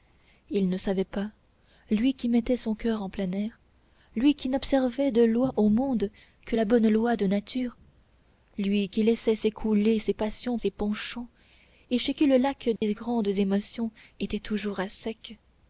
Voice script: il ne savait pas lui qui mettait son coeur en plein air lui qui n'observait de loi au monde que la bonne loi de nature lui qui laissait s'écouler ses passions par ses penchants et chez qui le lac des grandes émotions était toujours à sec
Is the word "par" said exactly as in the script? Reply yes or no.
no